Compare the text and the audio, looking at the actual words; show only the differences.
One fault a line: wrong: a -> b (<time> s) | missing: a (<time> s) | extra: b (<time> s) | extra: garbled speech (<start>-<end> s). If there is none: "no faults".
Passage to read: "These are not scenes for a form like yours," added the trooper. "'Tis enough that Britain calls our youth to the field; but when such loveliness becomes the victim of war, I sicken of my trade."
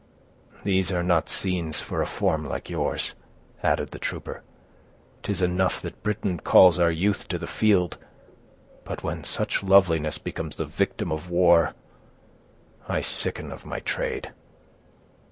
no faults